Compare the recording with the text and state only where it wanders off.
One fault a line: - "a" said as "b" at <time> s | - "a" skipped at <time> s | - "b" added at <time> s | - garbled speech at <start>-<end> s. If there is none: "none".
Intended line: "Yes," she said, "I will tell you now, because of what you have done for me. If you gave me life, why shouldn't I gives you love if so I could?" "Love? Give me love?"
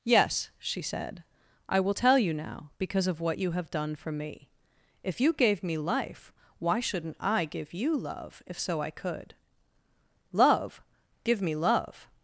- "gives" said as "give" at 7.4 s